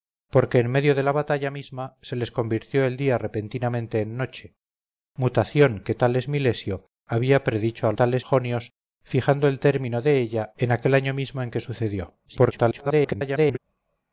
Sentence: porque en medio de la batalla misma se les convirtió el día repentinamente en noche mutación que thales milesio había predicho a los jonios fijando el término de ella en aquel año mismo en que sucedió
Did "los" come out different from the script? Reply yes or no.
yes